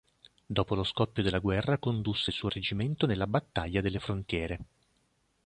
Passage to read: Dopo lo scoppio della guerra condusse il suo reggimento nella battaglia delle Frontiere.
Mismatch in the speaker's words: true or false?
false